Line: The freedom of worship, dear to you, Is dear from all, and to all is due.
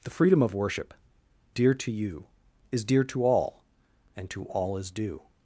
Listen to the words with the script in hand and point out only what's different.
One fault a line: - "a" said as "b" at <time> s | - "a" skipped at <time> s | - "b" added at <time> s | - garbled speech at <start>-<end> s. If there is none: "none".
- "from" said as "to" at 3.0 s